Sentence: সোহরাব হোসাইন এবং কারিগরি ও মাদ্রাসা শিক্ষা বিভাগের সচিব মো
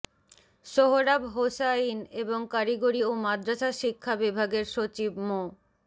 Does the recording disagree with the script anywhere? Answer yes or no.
no